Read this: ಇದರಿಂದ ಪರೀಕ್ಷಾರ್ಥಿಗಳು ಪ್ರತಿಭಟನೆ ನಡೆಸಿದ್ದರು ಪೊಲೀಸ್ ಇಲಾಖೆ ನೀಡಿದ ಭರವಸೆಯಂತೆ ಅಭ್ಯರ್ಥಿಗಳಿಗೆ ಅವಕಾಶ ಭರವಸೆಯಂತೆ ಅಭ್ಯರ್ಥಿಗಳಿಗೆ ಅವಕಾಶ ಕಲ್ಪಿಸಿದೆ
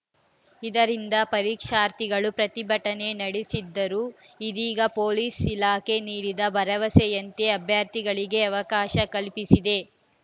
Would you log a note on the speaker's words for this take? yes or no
yes